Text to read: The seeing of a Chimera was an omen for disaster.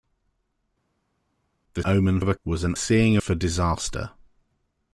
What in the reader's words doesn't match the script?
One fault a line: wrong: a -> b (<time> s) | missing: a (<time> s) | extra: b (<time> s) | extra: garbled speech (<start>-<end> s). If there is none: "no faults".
wrong: seeing -> omen (1.8 s)
missing: Chimera (2.3 s)
wrong: omen -> seeing (2.7 s)